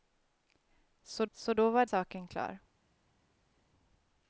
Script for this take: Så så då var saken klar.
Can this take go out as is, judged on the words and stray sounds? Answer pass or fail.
pass